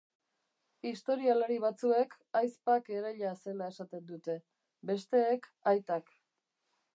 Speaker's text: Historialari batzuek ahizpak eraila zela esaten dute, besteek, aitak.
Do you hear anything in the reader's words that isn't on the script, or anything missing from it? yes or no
no